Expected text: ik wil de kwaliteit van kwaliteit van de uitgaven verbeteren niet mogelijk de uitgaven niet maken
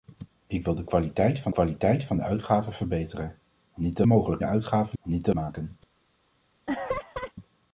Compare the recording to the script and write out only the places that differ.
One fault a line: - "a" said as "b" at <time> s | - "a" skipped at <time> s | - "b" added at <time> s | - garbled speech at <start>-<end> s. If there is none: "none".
none